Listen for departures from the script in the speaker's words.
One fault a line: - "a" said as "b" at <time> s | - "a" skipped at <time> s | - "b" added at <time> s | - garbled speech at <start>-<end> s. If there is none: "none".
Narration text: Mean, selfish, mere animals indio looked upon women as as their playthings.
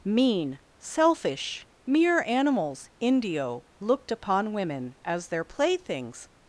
- "as" skipped at 5.3 s